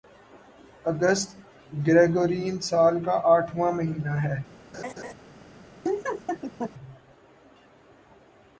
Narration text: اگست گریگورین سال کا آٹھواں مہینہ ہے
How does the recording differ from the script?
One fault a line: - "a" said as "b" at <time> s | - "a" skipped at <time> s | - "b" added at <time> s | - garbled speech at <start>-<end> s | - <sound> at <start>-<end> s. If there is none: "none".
- laugh at 4.7-5.1 s
- laugh at 5.8-6.7 s